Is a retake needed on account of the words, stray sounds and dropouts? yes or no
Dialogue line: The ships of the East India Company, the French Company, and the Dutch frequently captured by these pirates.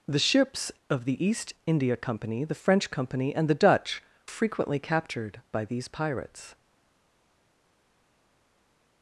no